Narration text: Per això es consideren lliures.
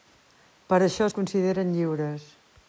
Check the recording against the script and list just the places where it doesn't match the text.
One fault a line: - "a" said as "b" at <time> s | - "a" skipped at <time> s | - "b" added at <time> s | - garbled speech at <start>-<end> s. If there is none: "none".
none